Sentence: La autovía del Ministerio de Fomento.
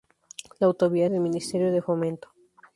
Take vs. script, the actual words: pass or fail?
pass